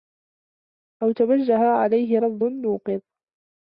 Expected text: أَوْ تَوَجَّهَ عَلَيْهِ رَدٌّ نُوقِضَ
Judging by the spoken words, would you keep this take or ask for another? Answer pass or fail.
pass